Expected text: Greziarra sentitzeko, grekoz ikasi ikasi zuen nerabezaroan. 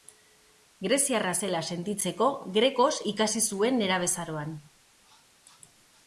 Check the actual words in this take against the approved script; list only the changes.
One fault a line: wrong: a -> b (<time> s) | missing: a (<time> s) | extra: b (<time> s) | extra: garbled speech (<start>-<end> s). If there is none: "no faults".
extra: zela (1.4 s)
missing: ikasi (3.4 s)